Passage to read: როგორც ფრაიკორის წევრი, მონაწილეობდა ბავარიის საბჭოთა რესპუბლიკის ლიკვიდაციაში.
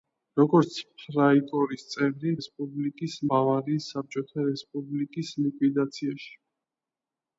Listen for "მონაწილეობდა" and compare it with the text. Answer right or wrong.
wrong